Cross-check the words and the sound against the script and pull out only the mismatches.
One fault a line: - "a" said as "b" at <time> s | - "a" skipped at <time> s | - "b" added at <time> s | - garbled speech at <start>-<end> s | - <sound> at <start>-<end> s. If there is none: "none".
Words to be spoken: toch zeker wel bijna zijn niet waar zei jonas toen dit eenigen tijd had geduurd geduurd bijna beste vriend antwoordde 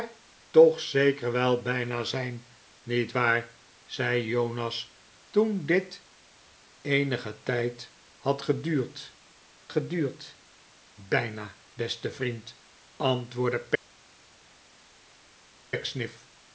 none